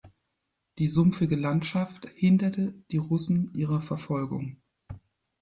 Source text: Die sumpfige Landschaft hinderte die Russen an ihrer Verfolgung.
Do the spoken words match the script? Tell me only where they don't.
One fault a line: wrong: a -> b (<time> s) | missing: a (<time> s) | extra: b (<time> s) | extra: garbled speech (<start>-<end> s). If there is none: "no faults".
missing: an (3.5 s)